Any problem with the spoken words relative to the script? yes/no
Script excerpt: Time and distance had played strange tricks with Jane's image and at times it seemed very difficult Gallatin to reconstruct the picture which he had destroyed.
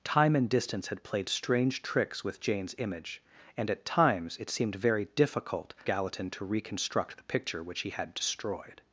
no